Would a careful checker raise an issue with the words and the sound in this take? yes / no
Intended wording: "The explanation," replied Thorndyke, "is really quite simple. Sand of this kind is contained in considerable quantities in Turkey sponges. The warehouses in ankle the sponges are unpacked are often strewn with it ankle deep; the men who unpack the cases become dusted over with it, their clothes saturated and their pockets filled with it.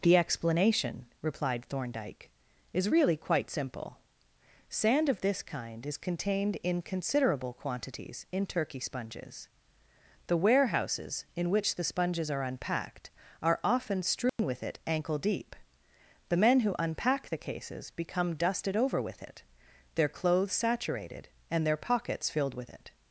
yes